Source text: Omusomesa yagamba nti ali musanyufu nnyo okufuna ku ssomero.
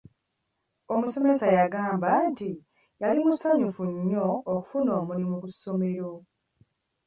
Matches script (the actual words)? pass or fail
fail